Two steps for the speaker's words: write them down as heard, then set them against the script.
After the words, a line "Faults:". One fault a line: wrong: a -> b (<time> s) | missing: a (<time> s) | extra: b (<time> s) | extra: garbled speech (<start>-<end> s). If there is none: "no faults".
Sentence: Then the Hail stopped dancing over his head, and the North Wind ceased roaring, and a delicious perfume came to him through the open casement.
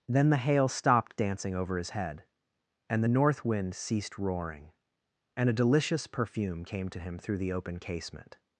Then the Hail stopped dancing over his head, and the North Wind ceased roaring, and a delicious perfume came to him through the open casement.
Faults:
no faults